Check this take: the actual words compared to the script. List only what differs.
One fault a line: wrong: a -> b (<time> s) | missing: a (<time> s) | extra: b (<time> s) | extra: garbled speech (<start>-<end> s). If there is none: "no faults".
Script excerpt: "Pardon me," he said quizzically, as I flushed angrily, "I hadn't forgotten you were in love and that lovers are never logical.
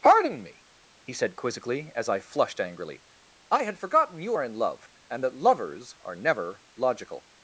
wrong: hadn't -> had (3.6 s)
wrong: were -> are (4.3 s)